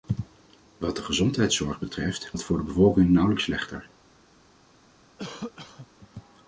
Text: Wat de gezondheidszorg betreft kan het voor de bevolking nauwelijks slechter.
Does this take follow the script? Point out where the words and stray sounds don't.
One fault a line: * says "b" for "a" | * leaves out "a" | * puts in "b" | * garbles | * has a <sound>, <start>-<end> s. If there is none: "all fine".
* leaves out "kan"
* has a cough, 5.2-5.9 s